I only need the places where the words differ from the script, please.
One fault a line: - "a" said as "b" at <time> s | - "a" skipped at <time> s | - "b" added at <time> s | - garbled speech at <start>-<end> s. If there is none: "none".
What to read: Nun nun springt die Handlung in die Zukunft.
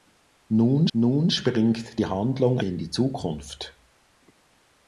none